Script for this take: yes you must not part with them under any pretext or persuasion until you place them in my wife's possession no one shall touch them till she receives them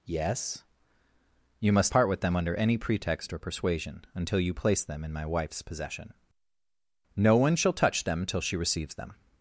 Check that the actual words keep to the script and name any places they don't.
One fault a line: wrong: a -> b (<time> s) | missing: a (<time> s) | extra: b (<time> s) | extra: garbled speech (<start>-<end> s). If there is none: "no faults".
missing: not (1.9 s)